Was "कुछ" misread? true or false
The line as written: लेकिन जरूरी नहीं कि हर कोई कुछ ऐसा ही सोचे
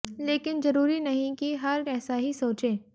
true